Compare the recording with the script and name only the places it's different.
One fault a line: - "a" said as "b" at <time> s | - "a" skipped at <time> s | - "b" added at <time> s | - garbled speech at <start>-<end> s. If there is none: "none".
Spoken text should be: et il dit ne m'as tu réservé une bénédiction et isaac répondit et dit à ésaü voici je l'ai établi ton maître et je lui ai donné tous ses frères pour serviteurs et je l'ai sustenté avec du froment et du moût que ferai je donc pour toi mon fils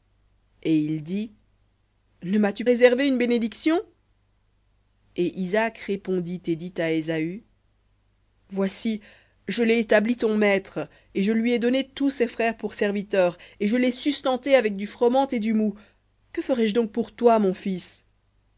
none